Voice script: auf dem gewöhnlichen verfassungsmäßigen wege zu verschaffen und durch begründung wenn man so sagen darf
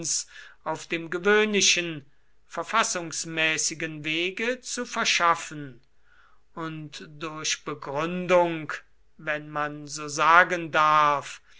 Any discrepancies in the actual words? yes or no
no